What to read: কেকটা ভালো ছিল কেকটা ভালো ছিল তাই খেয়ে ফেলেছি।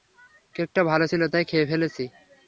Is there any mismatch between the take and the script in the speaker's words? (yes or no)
yes